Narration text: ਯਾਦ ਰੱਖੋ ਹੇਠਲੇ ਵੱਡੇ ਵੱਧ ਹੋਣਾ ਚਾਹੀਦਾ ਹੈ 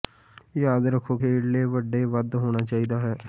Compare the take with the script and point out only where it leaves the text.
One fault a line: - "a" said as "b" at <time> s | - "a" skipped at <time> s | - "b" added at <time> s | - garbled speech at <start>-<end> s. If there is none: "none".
none